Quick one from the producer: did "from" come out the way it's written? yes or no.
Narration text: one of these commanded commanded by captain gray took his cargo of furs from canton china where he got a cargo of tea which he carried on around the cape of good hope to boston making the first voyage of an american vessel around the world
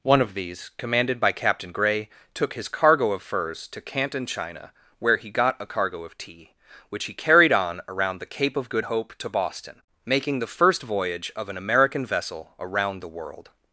no